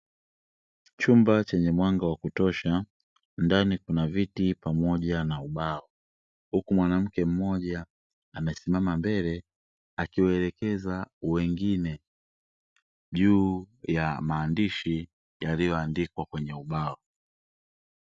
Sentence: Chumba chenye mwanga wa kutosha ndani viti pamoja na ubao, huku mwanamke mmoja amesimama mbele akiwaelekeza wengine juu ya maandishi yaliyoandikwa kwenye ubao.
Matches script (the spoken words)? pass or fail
fail